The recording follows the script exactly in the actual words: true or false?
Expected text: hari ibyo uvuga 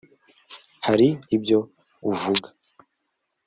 true